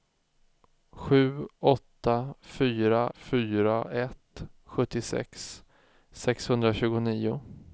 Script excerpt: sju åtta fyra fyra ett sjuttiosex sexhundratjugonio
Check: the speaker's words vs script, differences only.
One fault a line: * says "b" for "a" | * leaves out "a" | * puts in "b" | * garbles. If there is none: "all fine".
all fine